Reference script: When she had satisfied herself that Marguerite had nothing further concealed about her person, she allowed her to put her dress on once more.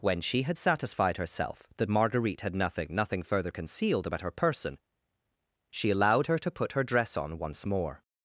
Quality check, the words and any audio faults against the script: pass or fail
fail